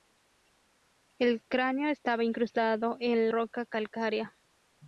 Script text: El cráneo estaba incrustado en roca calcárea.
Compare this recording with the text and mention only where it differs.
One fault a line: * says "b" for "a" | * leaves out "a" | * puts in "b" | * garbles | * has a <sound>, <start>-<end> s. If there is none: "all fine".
all fine